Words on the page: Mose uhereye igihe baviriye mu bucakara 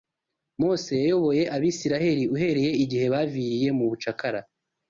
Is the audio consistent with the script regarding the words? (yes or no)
no